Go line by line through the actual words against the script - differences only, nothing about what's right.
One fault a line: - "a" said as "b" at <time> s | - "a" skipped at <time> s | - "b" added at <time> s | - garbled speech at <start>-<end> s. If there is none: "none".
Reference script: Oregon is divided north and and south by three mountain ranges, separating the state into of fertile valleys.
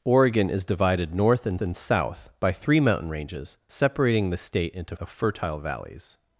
none